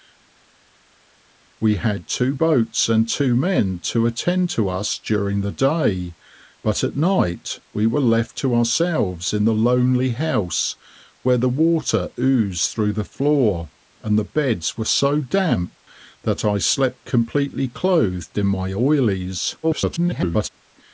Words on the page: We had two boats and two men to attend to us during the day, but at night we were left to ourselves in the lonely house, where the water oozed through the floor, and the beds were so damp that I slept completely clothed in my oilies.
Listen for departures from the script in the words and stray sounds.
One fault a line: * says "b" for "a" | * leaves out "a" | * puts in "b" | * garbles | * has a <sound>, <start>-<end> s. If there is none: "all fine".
* garbles